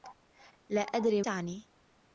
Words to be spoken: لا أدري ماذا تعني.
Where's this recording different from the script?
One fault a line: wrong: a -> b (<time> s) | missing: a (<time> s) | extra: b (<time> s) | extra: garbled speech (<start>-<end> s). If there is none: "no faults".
missing: ماذا (1.2 s)